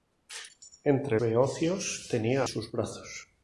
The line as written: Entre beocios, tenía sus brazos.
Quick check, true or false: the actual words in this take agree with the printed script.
true